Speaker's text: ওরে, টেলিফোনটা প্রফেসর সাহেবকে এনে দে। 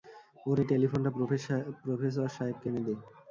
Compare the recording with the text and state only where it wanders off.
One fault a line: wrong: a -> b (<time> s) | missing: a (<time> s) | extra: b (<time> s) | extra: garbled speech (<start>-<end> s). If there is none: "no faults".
no faults